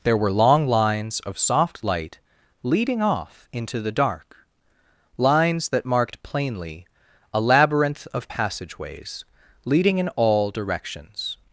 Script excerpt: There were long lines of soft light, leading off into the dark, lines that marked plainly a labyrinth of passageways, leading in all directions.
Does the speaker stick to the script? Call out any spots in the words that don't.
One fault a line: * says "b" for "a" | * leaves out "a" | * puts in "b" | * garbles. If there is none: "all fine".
all fine